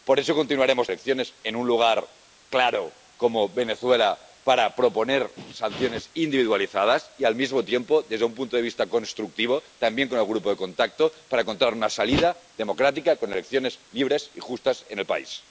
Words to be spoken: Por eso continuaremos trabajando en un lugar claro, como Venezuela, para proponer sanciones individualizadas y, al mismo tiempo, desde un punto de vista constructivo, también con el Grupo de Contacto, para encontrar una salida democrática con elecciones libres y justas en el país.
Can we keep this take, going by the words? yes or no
no